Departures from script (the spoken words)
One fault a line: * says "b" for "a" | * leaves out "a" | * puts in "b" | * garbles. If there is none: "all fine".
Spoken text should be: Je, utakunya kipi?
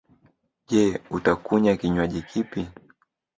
* puts in "kinwaji"